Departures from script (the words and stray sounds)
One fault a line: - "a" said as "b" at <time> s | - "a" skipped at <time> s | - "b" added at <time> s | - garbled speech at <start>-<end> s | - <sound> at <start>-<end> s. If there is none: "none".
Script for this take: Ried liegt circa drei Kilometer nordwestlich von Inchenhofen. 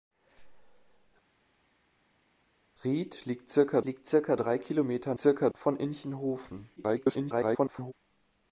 - "liegt circa" added at 3.8 s
- "nordwestlich" said as "circa" at 5.2 s
- garbled speech at 6.8-7.9 s